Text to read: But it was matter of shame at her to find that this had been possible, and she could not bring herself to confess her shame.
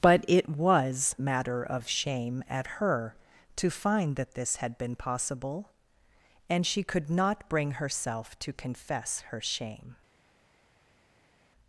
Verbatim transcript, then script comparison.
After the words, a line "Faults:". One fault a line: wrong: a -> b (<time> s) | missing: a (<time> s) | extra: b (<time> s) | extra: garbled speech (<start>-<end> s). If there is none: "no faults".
But it was matter of shame at her to find that this had been possible, and she could not bring herself to confess her shame.
Faults:
no faults